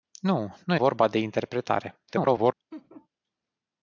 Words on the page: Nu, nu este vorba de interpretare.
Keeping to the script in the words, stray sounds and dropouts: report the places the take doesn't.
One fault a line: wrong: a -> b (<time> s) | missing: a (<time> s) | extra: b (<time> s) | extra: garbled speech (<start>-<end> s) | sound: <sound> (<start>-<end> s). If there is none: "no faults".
missing: este (0.8 s)
extra: garbled speech (2.1-2.5 s)
sound: laugh (2.7-3.1 s)